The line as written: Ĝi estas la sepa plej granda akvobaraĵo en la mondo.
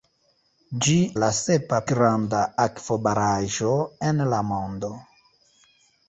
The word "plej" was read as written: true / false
false